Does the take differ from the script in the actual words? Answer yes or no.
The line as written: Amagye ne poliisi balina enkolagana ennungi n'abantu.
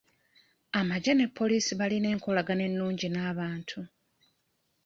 no